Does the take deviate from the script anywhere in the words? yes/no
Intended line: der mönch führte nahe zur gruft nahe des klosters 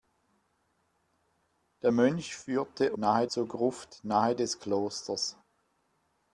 no